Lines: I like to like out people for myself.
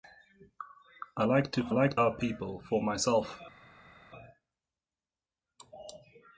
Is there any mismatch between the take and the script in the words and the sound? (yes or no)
no